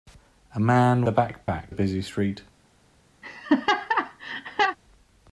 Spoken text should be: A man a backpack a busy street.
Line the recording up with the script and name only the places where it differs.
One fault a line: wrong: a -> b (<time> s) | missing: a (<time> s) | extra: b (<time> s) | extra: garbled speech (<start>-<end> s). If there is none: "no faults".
no faults